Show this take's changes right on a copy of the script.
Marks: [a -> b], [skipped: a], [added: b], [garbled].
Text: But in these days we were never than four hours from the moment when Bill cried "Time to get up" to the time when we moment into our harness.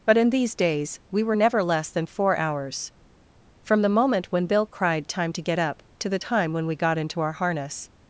But in these days we were never [added: less] than four hours from the moment when Bill cried "Time to get up" to the time when we [moment -> got] into our harness.